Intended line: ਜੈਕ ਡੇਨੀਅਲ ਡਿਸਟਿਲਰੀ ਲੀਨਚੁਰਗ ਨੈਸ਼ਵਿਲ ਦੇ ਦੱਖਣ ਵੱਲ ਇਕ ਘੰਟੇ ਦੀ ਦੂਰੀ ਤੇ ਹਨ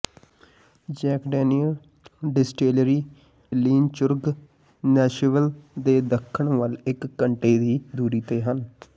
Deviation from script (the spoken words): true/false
false